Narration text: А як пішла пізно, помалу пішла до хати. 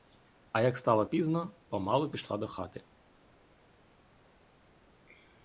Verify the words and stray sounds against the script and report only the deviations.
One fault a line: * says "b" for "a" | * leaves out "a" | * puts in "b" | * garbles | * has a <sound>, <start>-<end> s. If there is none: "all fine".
* says "стало" for "пішла"